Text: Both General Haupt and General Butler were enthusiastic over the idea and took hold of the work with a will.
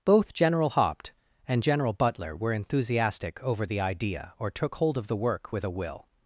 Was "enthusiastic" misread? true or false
false